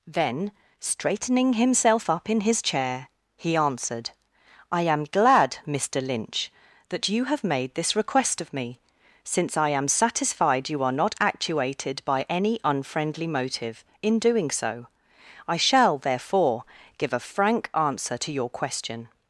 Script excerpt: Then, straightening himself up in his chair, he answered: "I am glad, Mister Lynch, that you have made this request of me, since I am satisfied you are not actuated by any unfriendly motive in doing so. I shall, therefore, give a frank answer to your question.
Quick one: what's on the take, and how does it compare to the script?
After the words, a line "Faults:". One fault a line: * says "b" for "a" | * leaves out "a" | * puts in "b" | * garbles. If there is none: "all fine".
Then, straightening himself up in his chair, he answered: "I am glad, Mister Lynch, that you have made this request of me, since I am satisfied you are not actuated by any unfriendly motive in doing so. I shall, therefore, give a frank answer to your question.
Faults:
all fine